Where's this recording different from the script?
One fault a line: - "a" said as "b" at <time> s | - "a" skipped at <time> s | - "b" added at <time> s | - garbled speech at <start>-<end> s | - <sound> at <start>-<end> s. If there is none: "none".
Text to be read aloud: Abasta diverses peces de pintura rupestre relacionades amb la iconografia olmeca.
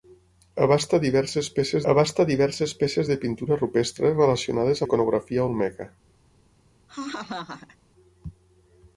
- "abasta diverses peces" added at 1.9 s
- "amb" skipped at 4.9 s
- laugh at 6.9-7.8 s